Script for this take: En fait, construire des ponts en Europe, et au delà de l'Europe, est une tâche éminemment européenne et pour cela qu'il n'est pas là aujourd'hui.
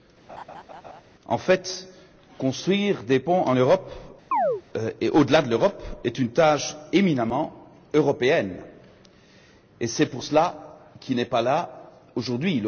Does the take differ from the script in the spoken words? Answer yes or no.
yes